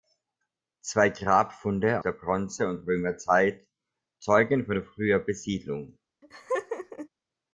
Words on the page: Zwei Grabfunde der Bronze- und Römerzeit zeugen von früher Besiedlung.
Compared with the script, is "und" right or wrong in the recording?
right